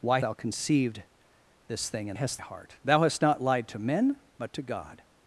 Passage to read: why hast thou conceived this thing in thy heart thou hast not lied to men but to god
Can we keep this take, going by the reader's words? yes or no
no